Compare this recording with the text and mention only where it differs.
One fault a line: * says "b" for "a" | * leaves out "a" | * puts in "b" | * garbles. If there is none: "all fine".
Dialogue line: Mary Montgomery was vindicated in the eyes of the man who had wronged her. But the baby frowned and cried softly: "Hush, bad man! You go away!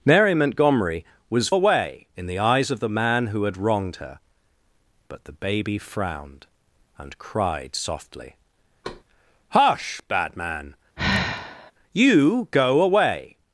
* says "away" for "vindicated"